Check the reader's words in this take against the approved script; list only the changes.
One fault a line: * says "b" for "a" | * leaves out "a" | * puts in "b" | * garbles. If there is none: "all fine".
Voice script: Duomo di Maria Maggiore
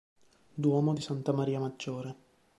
* puts in "Santa"